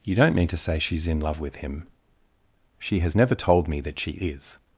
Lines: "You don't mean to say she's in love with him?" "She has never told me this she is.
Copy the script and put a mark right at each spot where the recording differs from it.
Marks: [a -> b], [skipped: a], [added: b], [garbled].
"You don't mean to say she's in love with him?" "She has never told me [this -> that] she is.